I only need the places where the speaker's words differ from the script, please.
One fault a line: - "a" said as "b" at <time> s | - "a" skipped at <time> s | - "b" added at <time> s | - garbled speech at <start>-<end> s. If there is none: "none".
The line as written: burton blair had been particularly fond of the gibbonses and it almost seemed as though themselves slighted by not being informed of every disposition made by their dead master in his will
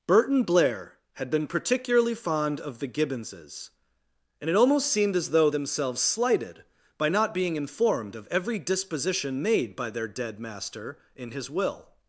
none